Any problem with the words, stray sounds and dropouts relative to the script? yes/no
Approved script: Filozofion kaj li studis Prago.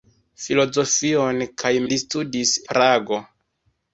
no